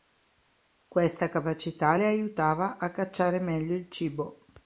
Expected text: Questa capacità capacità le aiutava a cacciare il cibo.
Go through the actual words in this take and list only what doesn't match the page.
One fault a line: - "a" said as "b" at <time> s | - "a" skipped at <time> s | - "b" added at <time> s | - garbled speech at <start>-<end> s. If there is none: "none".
- "capacità" skipped at 1.9 s
- "meglio" added at 3.4 s